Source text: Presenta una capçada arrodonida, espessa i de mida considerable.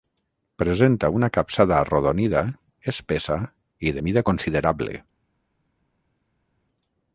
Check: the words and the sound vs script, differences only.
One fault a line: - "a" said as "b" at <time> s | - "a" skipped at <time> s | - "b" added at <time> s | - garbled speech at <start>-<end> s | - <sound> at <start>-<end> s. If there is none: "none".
none